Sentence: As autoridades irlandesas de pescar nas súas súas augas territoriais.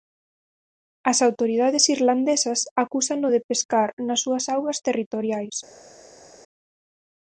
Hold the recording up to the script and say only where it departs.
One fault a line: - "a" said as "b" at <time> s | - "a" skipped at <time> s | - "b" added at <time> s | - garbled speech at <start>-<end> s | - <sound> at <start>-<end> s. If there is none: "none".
- "acúsano" added at 2.8 s
- "súas" skipped at 4.4 s